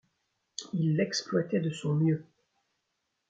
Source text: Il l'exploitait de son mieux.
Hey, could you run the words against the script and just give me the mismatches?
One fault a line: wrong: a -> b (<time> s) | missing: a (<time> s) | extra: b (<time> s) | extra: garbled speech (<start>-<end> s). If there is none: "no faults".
no faults